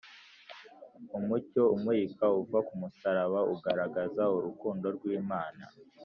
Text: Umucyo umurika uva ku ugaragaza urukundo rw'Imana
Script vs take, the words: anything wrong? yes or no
yes